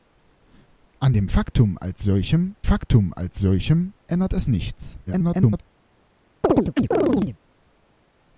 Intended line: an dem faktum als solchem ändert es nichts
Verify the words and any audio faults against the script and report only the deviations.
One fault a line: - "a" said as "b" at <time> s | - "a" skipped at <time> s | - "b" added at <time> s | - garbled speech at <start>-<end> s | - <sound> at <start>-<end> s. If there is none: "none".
- "faktum als solchem" added at 2.6 s
- garbled speech at 5.1-5.6 s
- chirp at 6.4-7.4 s